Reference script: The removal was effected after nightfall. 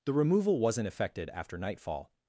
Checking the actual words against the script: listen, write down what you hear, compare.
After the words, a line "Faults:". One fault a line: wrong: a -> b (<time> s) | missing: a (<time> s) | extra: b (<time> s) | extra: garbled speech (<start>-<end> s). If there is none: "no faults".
The removal wasn't effected after nightfall.
Faults:
wrong: was -> wasn't (0.6 s)